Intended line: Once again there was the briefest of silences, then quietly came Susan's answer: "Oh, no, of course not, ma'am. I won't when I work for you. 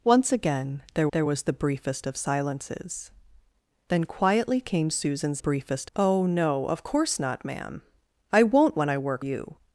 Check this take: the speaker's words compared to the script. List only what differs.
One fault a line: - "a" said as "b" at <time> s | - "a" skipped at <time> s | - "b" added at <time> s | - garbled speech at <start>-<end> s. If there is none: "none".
- "there" added at 1.1 s
- "answer" said as "briefest" at 5.4 s
- "for" skipped at 9.2 s